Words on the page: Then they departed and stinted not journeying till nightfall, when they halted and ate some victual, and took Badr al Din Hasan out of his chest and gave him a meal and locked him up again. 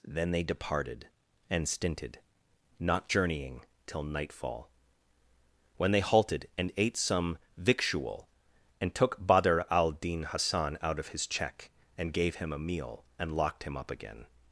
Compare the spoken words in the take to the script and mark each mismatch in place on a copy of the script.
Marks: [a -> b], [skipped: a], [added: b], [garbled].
Then they departed and stinted not journeying till nightfall, when they halted and ate some victual, and took Badr al Din Hasan out of his [chest -> check] and gave him a meal and locked him up again.